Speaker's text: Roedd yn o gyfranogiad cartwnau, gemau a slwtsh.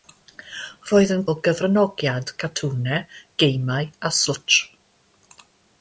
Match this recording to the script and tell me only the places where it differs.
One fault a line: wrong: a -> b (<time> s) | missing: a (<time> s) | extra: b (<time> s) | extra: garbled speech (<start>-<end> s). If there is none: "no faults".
no faults